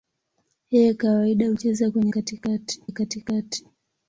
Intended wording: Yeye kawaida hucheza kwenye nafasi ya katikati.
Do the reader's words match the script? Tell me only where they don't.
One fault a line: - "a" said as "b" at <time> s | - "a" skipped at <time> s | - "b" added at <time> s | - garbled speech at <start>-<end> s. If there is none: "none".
- "nafasi" said as "katikati" at 2.1 s